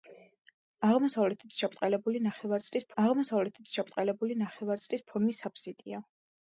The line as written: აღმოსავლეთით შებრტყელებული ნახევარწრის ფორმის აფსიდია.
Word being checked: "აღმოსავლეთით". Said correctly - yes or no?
yes